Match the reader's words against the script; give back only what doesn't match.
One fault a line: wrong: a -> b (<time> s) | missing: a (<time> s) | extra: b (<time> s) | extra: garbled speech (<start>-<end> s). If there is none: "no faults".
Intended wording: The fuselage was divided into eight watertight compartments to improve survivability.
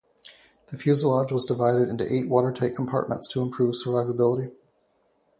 no faults